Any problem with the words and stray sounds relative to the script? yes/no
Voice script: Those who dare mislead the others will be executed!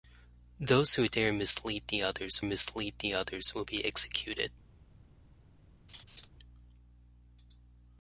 yes